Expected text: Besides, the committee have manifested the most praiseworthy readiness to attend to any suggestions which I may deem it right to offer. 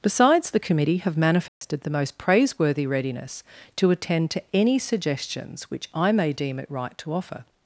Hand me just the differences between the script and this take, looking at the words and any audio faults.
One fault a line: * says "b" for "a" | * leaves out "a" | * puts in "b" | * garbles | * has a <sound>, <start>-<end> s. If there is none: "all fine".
* has a dropout, 1.5-1.6 s